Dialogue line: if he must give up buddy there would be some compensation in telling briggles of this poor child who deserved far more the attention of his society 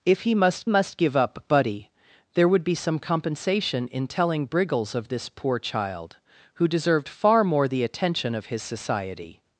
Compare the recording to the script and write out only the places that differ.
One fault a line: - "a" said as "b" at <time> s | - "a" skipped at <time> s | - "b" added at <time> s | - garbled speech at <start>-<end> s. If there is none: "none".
- "must" added at 0.7 s